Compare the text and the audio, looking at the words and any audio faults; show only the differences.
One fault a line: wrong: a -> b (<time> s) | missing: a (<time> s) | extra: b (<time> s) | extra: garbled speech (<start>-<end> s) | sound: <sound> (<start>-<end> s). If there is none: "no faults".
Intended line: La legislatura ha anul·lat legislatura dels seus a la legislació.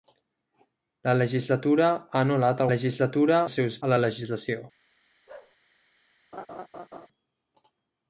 sound: bark (5.3-5.6 s)
sound: laugh (6.3-7.1 s)